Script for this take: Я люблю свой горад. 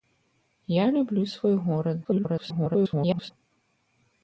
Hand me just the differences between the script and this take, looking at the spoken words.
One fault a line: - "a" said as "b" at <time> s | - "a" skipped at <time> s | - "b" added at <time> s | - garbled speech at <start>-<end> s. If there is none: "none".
- garbled speech at 2.0-3.3 s